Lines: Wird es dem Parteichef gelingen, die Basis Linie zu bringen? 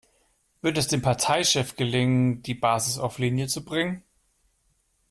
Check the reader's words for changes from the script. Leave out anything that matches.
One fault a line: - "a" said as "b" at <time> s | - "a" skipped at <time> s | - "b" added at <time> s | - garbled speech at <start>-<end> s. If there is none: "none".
- "auf" added at 3.0 s